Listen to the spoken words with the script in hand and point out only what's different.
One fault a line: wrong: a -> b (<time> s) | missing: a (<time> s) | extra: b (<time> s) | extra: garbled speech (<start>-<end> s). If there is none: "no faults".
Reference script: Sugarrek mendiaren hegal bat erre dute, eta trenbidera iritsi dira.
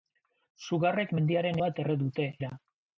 missing: hegal (1.6 s)
missing: eta trenbidera iritsi (2.3 s)